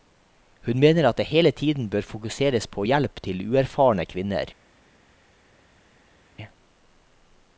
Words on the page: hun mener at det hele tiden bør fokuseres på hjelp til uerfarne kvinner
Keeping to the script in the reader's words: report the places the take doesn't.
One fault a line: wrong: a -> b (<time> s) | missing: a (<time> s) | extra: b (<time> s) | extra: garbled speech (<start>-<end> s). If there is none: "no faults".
no faults